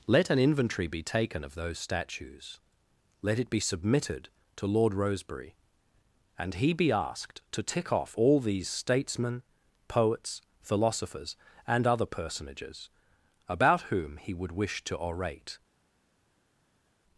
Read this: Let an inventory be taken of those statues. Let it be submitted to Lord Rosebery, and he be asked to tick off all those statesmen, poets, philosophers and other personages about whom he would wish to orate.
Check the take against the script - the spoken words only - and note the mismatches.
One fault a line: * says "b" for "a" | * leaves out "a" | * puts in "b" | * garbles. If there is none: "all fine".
* says "these" for "those"